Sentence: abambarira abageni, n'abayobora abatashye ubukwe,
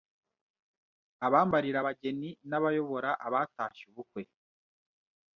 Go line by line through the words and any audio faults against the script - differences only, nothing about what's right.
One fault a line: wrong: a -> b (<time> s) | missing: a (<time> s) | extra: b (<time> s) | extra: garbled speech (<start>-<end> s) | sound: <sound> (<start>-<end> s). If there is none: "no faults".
no faults